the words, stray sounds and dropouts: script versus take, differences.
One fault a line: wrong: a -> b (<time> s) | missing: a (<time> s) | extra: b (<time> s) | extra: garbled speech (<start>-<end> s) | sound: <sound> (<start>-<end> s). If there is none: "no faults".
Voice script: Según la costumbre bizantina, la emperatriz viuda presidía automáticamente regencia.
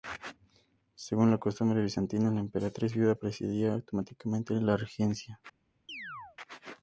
extra: la (4.5 s)
sound: chirp (5.9-6.4 s)